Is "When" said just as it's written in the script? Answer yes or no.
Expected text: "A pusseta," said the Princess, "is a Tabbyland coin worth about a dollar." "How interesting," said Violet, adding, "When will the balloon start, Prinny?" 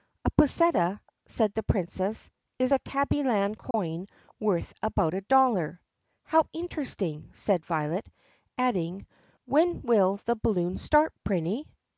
yes